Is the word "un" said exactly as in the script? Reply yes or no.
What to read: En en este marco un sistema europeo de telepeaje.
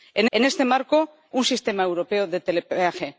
yes